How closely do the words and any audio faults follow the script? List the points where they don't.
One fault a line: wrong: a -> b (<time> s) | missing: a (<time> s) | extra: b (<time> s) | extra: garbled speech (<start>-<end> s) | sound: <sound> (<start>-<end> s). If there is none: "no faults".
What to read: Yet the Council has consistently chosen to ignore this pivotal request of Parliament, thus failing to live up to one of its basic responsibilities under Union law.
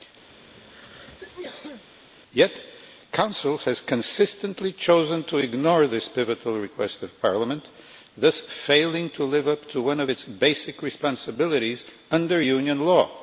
sound: throat clearing (0.3-1.8 s)